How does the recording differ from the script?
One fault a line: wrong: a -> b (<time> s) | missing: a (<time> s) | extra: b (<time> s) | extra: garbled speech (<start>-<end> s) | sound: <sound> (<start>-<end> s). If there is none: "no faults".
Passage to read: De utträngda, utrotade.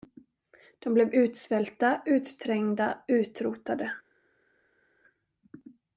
extra: blev utsvälta (0.9 s)